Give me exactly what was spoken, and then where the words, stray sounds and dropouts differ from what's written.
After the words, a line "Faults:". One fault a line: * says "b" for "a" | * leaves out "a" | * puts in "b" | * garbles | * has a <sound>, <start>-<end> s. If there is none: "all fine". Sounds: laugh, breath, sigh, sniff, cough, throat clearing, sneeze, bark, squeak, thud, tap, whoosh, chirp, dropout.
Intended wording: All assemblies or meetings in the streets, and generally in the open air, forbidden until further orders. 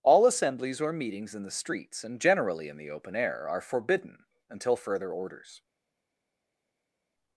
All assemblies or meetings in the streets, and generally in the open air, are forbidden until further orders.
Faults:
* puts in "are"